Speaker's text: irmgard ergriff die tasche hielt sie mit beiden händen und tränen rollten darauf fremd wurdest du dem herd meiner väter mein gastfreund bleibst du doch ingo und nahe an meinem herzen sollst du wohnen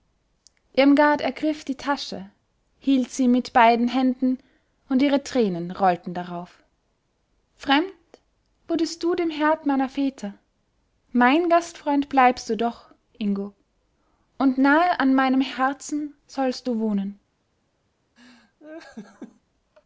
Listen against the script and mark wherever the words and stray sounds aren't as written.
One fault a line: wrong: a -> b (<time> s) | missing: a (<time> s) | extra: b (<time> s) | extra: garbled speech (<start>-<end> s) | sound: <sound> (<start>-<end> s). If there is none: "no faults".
extra: ihre (5.0 s)
sound: laugh (18.2-19.4 s)